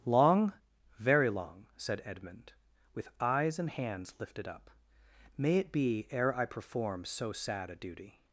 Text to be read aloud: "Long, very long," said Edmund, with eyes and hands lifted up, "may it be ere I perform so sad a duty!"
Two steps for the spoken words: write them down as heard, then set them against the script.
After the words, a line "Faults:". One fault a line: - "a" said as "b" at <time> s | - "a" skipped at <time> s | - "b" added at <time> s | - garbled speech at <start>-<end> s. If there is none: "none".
"Long, very long," said Edmund, with eyes and hands lifted up, "may it be ere I perform so sad a duty!"
Faults:
none